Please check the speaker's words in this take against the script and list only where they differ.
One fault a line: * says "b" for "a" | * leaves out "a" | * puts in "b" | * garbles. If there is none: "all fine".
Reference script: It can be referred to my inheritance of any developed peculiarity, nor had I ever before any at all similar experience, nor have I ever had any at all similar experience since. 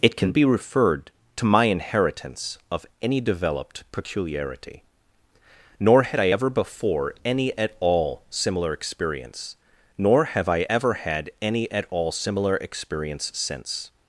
all fine